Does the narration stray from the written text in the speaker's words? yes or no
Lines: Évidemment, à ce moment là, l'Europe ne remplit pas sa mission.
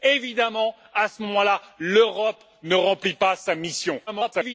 yes